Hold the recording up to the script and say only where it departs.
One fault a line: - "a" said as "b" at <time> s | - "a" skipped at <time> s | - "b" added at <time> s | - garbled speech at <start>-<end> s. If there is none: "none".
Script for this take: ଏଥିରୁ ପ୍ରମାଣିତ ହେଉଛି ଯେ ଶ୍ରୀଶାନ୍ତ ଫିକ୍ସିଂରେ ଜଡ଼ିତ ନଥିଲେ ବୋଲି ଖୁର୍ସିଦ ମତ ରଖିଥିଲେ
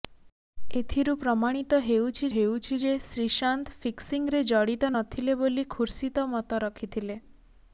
- "ହେଉଛି" added at 2.3 s